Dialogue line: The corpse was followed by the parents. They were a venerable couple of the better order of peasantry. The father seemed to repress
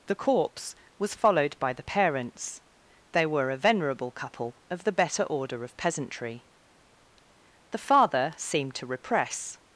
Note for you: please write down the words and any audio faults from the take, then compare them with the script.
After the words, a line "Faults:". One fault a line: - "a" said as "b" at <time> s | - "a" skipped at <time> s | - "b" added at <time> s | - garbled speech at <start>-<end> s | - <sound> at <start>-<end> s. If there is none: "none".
The corpse was followed by the parents. They were a venerable couple of the better order of peasantry. The father seemed to repress
Faults:
none